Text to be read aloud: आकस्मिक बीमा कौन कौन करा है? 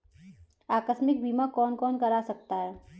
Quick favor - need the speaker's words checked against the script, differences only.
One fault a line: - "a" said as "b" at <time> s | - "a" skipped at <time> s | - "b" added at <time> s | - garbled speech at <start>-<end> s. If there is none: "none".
- "सकता" added at 2.2 s